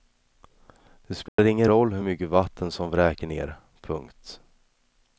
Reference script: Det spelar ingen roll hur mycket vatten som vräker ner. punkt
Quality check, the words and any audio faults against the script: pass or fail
fail